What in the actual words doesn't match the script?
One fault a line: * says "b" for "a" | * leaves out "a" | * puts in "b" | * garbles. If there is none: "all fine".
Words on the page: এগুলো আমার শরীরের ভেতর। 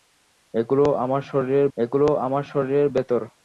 * puts in "এগুলো আমার শরীরের"